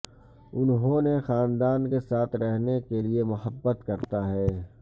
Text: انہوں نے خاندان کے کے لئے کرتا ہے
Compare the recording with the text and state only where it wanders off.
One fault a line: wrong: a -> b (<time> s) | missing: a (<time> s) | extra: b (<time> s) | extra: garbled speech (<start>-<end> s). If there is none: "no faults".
extra: ساتھ رہنے (2.0 s)
extra: محبت (3.2 s)